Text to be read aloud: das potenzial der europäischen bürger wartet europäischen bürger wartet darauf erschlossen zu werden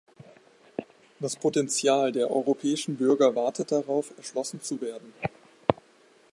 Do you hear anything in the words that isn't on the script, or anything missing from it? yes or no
yes